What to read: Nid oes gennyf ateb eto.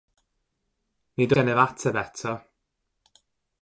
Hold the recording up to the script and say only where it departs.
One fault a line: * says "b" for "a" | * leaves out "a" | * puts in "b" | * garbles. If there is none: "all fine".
* leaves out "oes"